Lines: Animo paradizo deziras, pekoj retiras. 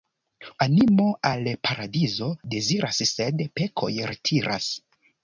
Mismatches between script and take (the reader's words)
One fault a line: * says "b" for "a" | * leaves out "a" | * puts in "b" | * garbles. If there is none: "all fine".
* puts in "al"
* puts in "sed"